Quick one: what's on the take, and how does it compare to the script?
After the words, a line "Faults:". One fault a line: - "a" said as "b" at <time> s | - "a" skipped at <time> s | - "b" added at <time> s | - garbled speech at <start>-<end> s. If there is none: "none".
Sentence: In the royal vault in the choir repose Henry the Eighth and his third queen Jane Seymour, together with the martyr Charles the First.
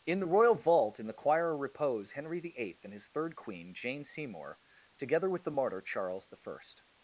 In the royal vault in the choir repose Henry the Eighth and his third queen Jane Seymour, together with the martyr Charles the First.
Faults:
none